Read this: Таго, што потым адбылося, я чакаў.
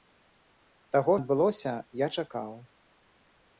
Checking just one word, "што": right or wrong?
wrong